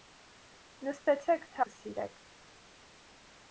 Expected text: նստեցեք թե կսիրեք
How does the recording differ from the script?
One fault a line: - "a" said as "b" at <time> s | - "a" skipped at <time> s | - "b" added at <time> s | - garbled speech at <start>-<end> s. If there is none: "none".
none